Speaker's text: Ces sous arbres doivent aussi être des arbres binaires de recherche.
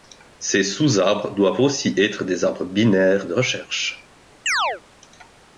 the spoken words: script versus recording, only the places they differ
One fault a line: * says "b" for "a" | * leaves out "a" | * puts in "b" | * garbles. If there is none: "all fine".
all fine